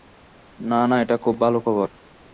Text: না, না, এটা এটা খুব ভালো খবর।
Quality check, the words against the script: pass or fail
fail